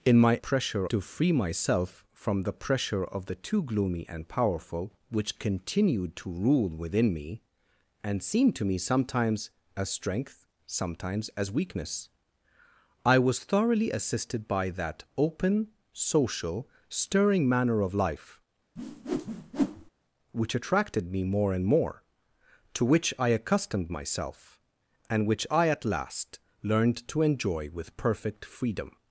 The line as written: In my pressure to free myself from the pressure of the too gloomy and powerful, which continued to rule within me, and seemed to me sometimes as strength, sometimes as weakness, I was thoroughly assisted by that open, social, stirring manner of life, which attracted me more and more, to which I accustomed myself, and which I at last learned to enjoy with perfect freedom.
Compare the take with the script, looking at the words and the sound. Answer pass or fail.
fail